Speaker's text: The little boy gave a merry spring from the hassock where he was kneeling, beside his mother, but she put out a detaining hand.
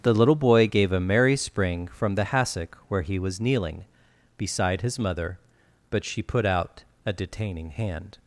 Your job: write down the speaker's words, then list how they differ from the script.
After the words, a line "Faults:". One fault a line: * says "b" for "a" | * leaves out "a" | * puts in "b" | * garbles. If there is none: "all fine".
The little boy gave a merry spring from the hassock where he was kneeling, beside his mother, but she put out a detaining hand.
Faults:
all fine